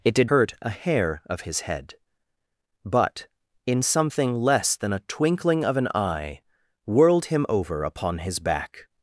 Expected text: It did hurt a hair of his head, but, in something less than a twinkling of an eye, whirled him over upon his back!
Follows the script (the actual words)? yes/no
yes